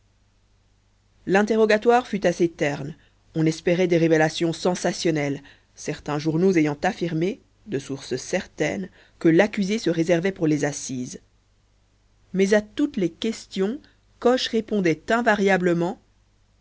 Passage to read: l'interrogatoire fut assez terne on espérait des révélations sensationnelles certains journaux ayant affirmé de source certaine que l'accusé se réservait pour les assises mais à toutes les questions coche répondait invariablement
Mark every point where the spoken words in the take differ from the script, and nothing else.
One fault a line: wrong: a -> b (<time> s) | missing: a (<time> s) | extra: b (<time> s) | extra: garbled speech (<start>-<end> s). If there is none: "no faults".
no faults